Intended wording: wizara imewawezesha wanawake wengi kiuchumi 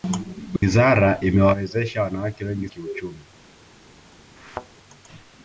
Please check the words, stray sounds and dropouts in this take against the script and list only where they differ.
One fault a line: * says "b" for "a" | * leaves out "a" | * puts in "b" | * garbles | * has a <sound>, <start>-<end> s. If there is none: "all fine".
* has a dropout, 0.6-0.6 s
* has a thud, 4.4-4.7 s